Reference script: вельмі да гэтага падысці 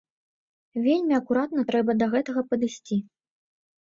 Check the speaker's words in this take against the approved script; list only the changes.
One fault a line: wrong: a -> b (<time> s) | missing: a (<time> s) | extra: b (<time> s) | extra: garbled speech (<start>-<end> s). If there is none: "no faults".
extra: акуратна трэба (1.2 s)